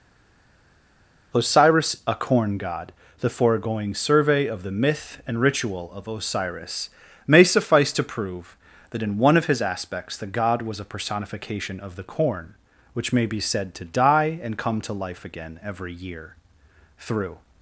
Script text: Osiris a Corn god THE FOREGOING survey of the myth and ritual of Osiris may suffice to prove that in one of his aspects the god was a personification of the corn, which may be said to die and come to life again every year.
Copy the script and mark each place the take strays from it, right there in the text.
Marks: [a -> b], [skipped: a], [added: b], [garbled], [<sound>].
Osiris a Corn god THE FOREGOING survey of the myth and ritual of Osiris may suffice to prove that in one of his aspects the god was a personification of the corn, which may be said to die and come to life again every year. [added: Through]